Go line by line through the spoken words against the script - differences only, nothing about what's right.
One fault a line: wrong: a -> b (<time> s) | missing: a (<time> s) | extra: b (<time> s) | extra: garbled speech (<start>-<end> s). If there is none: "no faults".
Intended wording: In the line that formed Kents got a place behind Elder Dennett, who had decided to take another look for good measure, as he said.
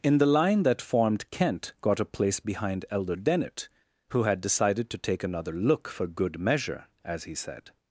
wrong: Kents -> Kent (1.3 s)